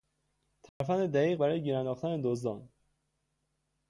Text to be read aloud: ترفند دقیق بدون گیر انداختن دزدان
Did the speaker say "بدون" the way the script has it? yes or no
no